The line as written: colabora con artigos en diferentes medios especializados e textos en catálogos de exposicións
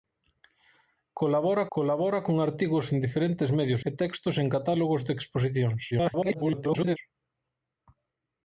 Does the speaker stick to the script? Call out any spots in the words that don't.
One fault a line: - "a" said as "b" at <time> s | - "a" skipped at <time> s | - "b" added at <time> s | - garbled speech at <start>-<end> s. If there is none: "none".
- "colabora" added at 1.7 s
- "especializados" skipped at 3.8 s
- garbled speech at 5.9-7.0 s